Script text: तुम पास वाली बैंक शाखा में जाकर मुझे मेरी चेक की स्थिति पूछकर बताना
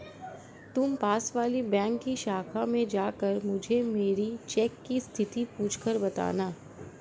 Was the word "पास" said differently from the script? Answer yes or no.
no